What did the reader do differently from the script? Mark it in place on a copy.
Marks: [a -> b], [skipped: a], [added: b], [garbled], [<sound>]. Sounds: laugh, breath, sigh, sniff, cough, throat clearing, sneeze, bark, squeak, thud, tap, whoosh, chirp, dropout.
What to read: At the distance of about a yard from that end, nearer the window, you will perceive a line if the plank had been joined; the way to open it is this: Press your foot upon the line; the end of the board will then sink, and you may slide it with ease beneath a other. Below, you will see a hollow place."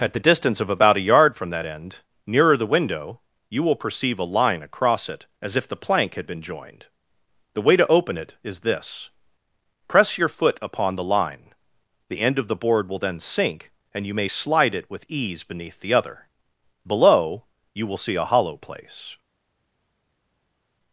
At the distance of about a yard from that end, nearer the window, you will perceive a line [added: across it as] if the plank had been joined; the way to open it is this: Press your foot upon the line; the end of the board will then sink, and you may slide it with ease beneath [a -> the] other. Below, you will see a hollow place."